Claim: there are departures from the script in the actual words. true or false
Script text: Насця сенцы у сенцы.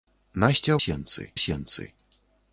false